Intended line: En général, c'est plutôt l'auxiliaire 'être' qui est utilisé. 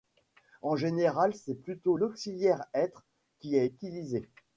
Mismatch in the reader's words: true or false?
false